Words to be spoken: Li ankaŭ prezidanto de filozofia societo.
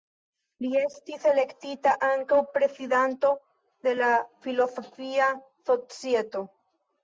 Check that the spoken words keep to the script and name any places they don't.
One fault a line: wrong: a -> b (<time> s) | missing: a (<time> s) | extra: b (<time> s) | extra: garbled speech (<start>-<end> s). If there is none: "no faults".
extra: estis elektita (0.8 s)
extra: la (4.0 s)